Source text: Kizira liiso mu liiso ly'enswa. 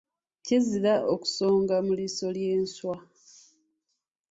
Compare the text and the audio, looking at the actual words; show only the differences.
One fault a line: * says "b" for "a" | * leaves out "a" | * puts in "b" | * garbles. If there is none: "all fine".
* says "okusonga" for "liiso"